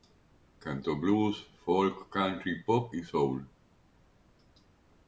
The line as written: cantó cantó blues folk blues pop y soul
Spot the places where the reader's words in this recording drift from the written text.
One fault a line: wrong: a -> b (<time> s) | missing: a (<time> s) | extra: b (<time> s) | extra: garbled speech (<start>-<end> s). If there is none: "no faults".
missing: cantó (1.0 s)
wrong: blues -> country (2.1 s)